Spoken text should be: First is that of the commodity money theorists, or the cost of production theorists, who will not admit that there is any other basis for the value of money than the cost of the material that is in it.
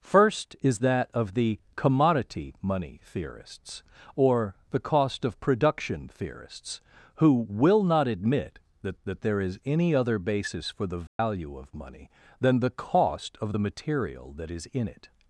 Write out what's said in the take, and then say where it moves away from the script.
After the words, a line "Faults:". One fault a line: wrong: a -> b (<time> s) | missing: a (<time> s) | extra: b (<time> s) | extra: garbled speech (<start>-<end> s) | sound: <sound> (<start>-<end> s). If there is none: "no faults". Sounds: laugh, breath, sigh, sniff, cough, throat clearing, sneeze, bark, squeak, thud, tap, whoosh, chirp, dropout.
First is that of the commodity money theorists, or the cost of production theorists, who will not admit that that there is any other basis for the value of money than the cost of the material that is in it.
Faults:
extra: that (9.0 s)
sound: dropout (11.1-11.2 s)